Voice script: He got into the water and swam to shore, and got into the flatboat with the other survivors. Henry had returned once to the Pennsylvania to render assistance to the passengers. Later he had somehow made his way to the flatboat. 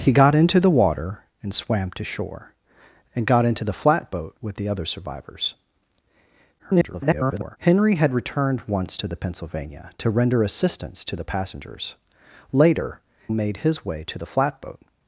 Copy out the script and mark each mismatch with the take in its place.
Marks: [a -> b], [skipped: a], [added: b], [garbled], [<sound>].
He got into the water and swam to shore, and got into the flatboat with the other survivors. [garbled] Henry had returned once to the Pennsylvania to render assistance to the passengers. Later [skipped: he had somehow] made his way to the flatboat.